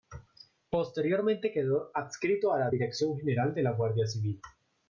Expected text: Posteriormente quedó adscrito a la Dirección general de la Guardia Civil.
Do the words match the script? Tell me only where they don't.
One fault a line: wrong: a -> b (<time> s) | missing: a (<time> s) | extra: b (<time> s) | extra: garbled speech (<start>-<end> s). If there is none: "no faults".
no faults